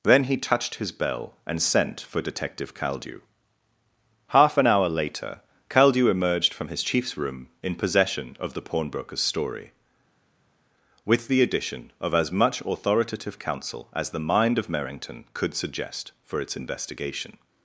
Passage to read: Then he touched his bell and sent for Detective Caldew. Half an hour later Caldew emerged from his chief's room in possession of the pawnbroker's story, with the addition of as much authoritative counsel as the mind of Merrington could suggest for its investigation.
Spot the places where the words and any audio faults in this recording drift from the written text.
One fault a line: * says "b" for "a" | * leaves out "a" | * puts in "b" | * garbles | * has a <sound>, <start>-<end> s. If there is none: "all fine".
all fine